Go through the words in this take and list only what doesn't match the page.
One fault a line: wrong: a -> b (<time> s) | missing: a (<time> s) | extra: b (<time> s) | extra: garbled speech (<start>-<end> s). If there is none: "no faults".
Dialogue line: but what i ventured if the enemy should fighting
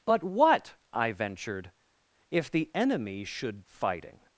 no faults